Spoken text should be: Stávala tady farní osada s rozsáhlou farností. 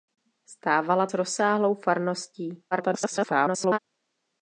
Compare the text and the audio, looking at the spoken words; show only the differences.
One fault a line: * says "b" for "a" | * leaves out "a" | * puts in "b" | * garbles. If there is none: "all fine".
* leaves out "tady farní osada"
* garbles